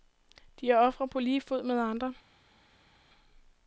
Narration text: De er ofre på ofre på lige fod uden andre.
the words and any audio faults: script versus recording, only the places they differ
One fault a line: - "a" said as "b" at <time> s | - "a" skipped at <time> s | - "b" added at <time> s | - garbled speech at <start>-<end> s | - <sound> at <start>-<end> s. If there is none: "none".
- "ofre på" skipped at 1.2 s
- "uden" said as "med" at 1.6 s